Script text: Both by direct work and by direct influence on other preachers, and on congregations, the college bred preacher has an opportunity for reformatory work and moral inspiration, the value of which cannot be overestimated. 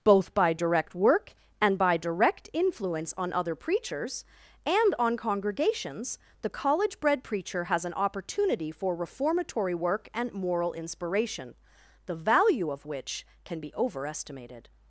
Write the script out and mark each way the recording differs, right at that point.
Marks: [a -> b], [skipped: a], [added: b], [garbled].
Both by direct work and by direct influence on other preachers, and on congregations, the college bred preacher has an opportunity for reformatory work and moral inspiration, the value of which [cannot -> can] be overestimated.